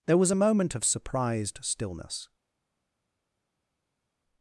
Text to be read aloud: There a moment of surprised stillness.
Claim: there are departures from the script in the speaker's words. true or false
true